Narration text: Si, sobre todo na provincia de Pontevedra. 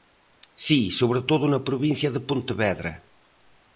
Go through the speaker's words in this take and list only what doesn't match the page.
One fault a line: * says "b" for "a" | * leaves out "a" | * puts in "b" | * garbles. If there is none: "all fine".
all fine